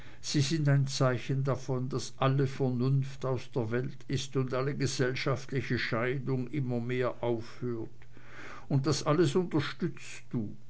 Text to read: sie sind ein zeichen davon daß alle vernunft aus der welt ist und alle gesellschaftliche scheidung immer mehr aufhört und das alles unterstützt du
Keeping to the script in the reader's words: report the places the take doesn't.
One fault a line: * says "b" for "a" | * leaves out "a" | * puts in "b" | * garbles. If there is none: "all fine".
all fine